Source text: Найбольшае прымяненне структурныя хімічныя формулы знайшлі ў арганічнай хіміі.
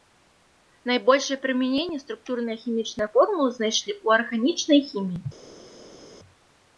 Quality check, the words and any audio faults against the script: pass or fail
pass